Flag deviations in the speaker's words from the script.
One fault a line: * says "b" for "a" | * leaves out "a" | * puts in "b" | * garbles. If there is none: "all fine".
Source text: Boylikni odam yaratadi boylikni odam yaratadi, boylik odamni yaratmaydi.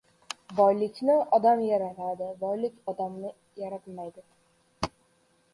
* leaves out "boylikni odam yaratadi"